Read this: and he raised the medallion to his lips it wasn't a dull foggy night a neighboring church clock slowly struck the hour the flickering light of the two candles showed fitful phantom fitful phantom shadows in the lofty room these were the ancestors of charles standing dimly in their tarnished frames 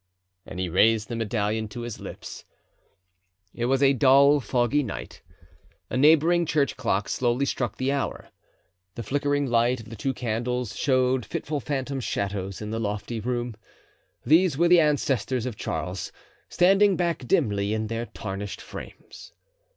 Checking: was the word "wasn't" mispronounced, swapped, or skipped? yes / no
yes